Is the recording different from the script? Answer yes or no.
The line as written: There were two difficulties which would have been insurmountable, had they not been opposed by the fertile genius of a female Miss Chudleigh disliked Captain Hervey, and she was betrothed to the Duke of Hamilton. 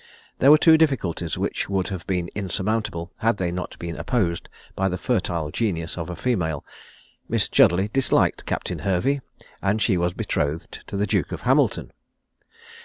no